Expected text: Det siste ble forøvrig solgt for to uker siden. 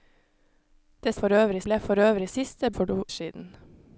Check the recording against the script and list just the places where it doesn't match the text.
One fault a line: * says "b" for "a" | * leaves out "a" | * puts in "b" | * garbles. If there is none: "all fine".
* says "forøvrig" for "siste"
* says "siste" for "solgt"
* leaves out "uker"